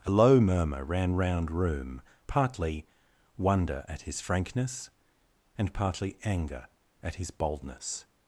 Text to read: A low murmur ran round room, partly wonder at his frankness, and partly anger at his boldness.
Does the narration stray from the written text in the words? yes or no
no